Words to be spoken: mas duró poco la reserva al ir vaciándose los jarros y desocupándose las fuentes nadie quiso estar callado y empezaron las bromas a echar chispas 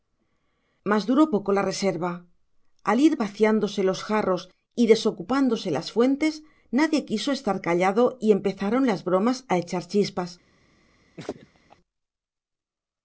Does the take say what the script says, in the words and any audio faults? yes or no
no